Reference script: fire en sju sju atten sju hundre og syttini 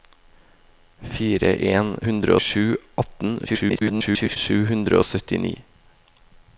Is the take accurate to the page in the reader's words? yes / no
no